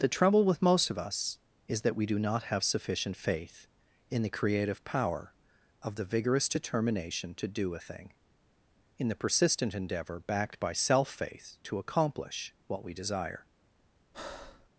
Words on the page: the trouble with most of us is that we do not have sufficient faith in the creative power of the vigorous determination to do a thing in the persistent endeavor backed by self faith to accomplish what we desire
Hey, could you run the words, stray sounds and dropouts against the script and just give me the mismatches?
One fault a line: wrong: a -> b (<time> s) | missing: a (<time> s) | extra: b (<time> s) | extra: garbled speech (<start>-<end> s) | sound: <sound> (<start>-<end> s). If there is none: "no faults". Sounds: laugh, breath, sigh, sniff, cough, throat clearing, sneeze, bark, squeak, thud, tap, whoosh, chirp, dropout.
sound: breath (14.1-14.7 s)